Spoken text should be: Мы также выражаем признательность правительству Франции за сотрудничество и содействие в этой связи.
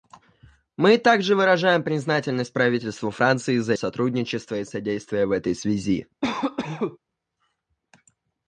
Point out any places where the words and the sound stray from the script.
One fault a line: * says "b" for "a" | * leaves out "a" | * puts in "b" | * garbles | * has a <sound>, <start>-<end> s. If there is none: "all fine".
* has a cough, 6.2-7.0 s